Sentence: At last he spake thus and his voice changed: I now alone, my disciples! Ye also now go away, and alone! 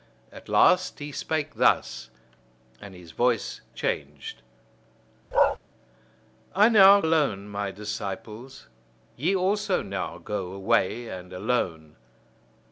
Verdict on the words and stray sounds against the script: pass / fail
fail